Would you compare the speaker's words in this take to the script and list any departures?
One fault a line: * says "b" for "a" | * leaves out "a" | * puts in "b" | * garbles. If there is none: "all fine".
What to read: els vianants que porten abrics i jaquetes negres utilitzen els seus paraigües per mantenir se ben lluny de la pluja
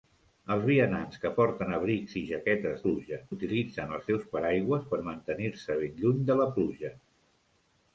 * says "pluja" for "negres"